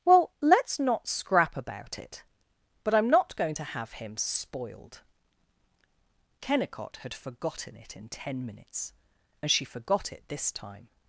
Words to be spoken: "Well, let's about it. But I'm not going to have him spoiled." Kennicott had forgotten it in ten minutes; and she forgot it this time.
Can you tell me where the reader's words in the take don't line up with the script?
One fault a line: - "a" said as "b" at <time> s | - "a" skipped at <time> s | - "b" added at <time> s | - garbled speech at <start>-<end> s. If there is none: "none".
- "not scrap" added at 0.8 s